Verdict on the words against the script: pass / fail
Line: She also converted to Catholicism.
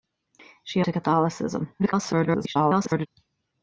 fail